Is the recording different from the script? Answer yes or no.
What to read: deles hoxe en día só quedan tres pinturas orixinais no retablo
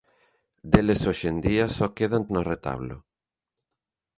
yes